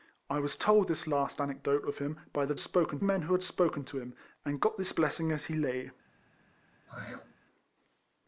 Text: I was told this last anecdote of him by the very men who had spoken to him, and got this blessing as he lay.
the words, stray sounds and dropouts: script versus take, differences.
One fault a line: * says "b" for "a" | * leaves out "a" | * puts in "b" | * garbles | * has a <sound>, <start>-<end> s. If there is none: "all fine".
* says "spoken" for "very"
* has a throat clearing, 6.9-7.3 s